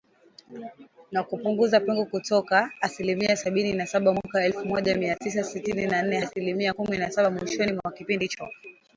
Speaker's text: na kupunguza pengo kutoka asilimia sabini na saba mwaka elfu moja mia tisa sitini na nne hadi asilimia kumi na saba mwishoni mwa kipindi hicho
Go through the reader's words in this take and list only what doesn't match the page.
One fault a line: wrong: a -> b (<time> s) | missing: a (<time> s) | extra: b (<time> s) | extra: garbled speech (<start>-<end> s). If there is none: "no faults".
missing: hadi (6.2 s)